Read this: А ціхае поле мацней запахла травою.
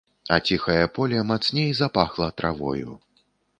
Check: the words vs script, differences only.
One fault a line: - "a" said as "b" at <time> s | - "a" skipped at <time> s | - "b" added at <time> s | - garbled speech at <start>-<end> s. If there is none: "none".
none